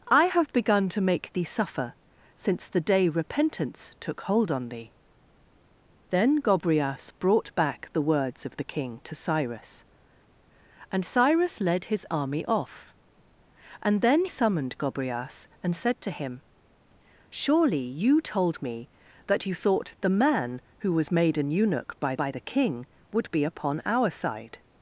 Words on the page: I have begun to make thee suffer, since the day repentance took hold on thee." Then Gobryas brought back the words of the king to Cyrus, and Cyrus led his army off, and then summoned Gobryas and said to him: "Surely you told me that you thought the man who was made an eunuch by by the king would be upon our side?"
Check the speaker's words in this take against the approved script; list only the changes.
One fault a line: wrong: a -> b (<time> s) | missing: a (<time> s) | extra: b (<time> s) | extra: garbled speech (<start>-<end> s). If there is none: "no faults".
no faults